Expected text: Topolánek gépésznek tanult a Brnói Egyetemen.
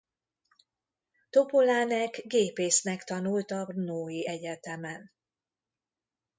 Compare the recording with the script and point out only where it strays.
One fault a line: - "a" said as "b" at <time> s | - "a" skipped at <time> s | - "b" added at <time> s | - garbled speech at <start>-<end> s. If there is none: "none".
none